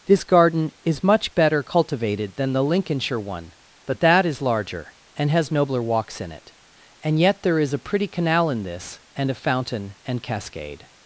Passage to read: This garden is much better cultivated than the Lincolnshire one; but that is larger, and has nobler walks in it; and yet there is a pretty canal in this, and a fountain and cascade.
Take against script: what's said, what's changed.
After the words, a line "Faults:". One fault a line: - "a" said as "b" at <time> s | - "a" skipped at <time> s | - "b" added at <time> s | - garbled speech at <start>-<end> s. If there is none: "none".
This garden is much better cultivated than the Lincolnshire one; but that is larger, and has nobler walks in it; and yet there is a pretty canal in this, and a fountain and cascade.
Faults:
none